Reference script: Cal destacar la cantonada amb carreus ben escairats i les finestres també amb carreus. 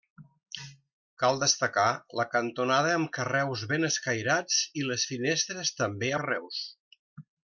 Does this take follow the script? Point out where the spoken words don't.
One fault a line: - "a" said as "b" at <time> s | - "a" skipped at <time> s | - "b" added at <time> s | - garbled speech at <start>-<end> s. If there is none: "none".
- "amb" skipped at 6.1 s